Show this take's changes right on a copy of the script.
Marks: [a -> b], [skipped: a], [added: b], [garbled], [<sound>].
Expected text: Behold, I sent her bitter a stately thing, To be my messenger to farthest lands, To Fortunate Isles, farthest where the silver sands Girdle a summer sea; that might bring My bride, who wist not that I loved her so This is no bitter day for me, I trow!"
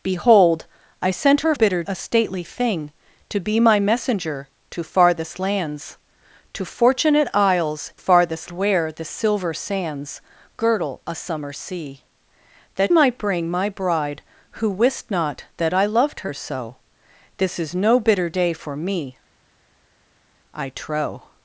Behold, I sent her bitter a stately thing, To be my messenger to farthest lands, To Fortunate Isles, farthest where the silver sands Girdle a summer sea; that might bring My bride, who wist not that I loved her so This is no bitter day for me, I trow!"